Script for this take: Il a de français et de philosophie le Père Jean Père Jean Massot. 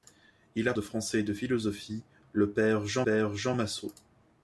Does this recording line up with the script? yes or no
yes